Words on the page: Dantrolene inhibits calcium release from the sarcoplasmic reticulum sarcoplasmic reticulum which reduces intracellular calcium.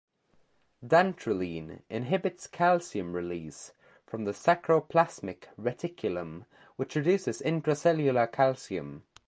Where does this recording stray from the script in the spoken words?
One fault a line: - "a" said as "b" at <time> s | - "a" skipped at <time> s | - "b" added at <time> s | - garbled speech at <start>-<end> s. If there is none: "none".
- "sarcoplasmic reticulum" skipped at 6.5 s